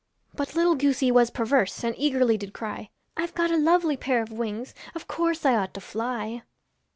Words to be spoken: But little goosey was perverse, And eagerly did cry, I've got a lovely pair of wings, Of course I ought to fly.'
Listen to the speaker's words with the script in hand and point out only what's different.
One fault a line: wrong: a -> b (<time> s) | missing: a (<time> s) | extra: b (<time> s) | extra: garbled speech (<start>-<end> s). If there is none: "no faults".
no faults